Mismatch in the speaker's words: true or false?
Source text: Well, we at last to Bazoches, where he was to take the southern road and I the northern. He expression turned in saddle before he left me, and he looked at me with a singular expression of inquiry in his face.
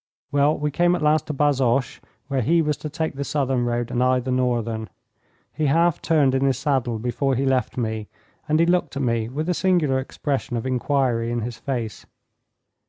true